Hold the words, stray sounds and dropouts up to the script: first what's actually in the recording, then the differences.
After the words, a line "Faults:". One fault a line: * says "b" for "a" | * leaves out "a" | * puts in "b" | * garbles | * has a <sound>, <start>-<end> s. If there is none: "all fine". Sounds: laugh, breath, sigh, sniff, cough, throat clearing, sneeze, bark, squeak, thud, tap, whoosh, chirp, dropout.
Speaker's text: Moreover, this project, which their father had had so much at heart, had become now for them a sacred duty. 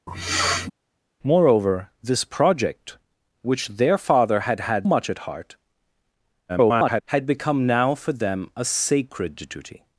Moreover, this project, which their father had had much at heart, [garbled] had become now for them a sacred duty.
Faults:
* has a sniff, 0.1-0.7 s
* leaves out "so"
* garbles